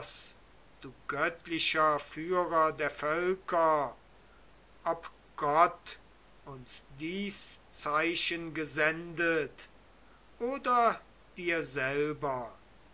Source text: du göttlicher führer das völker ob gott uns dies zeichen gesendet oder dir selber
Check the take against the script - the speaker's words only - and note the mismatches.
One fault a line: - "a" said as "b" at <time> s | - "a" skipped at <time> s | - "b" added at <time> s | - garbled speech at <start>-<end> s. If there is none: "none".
- "das" said as "der" at 2.7 s